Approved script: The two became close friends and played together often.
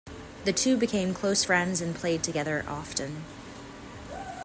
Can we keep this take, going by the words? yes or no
yes